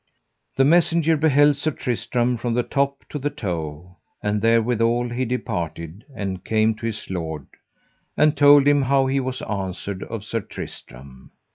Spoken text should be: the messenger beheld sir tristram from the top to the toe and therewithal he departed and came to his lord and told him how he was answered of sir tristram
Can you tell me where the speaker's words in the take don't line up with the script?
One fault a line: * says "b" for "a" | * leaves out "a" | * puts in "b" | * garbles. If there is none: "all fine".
all fine